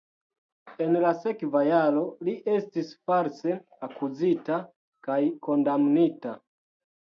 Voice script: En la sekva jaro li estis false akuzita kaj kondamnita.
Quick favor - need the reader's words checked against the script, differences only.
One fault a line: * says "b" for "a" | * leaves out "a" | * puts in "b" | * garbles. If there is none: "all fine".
all fine